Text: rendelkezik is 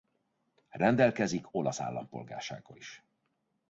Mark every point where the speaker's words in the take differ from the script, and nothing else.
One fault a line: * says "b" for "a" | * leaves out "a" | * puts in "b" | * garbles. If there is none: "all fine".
* puts in "olasz állampolgársággal"